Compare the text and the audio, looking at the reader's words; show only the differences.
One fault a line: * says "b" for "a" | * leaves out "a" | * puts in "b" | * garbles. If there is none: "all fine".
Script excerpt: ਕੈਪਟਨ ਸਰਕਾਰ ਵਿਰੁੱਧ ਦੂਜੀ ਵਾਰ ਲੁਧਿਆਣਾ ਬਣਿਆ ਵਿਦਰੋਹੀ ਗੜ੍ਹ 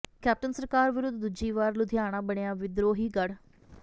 all fine